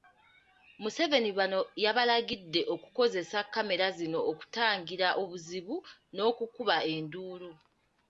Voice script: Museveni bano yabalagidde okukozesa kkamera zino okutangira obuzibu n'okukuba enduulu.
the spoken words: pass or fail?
pass